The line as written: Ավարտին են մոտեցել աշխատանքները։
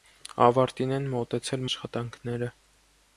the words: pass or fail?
pass